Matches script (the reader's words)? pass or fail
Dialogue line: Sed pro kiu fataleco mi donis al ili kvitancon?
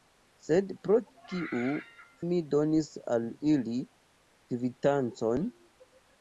fail